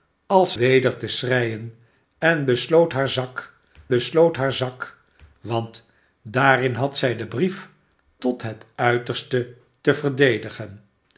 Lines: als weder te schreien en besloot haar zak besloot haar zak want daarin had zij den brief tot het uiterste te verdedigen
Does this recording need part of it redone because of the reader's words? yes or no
no